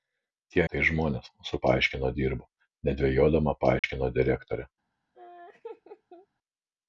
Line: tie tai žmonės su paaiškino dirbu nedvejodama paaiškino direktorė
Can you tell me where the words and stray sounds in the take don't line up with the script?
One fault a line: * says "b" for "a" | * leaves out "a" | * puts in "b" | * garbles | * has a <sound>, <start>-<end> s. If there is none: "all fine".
* has a dropout, 3.8-3.8 s
* has a laugh, 5.1-6.3 s